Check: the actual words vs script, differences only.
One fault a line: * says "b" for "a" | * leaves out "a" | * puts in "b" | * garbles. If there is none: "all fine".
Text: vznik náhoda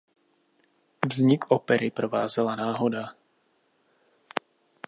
* puts in "opery provázela"